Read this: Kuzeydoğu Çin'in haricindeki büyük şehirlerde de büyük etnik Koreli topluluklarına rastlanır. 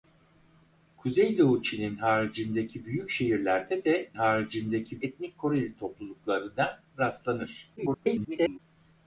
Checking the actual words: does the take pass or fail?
fail